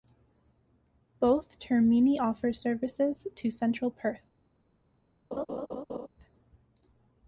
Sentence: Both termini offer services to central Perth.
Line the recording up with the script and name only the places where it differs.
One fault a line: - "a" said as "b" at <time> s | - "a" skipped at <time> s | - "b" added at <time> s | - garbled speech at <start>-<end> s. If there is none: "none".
none